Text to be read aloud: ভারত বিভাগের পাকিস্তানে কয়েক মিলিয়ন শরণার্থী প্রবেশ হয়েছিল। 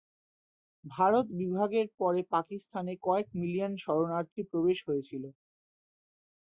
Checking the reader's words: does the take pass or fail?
fail